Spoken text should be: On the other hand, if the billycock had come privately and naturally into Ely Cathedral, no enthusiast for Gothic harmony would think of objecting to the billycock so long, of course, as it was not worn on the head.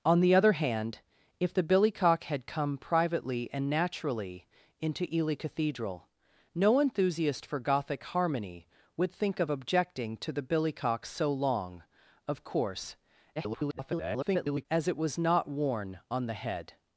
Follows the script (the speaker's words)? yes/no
no